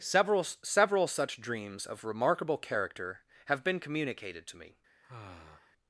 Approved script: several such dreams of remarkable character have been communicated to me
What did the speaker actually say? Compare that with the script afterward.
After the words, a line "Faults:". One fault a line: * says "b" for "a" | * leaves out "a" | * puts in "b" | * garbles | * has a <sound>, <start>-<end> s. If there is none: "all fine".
several several such dreams of remarkable character have been communicated to me
Faults:
* puts in "several"
* has a sigh, 5.0-5.7 s